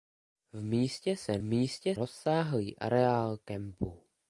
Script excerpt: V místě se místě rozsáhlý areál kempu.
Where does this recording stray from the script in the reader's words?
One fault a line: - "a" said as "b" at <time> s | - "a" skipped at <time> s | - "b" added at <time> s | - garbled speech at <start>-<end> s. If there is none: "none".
none